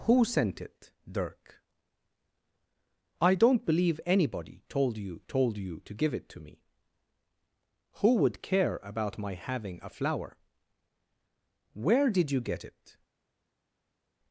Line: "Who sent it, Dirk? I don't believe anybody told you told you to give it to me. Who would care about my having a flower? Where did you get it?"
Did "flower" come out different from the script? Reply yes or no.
no